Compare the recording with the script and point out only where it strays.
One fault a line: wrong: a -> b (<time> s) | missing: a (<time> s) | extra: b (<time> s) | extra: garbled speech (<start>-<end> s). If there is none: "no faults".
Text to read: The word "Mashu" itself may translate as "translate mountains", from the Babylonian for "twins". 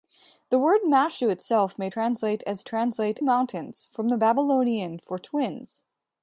no faults